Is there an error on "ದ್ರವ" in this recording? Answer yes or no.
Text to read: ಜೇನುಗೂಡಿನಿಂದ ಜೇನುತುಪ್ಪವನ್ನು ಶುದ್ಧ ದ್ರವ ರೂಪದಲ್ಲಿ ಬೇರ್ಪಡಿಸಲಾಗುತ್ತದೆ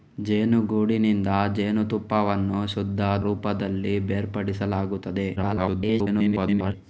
yes